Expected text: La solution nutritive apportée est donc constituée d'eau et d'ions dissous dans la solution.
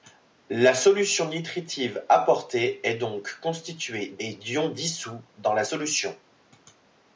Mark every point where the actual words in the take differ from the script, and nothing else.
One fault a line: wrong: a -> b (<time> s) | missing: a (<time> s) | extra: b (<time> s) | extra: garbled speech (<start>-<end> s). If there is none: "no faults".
missing: d'eau (4.2 s)